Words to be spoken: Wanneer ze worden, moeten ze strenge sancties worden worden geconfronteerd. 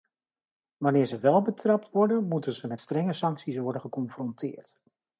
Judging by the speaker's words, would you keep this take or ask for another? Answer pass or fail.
fail